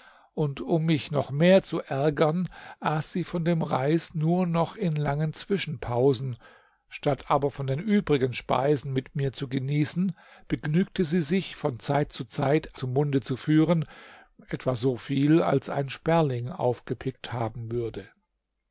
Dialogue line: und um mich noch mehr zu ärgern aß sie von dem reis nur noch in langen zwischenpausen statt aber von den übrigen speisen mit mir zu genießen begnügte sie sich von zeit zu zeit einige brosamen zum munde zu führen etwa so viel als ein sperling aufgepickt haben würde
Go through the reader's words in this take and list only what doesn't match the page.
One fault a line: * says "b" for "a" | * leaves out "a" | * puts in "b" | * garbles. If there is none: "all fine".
* leaves out "einige brosamen"